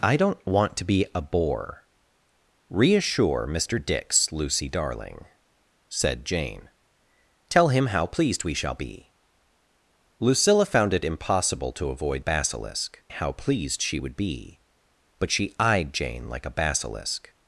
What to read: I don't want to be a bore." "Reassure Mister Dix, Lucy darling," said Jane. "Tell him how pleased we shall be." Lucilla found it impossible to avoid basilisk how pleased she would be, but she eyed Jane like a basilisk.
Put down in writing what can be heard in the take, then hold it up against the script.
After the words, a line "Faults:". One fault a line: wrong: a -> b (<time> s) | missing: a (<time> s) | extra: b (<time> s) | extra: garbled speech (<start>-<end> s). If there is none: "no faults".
I don't want to be a bore." "Reassure Mister Dix, Lucy darling," said Jane. "Tell him how pleased we shall be." Lucilla found it impossible to avoid basilisk how pleased she would be, but she eyed Jane like a basilisk.
Faults:
no faults